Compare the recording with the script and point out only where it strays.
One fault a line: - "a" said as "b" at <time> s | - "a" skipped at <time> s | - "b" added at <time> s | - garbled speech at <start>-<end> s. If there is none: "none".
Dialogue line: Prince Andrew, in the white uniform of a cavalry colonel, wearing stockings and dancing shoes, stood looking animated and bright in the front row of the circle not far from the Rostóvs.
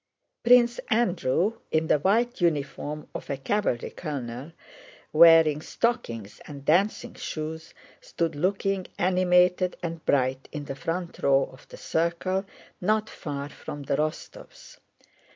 none